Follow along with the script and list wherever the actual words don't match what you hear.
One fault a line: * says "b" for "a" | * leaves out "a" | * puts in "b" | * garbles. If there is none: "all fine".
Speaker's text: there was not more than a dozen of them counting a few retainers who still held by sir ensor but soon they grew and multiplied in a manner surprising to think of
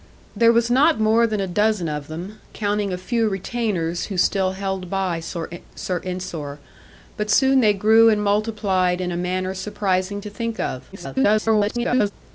* garbles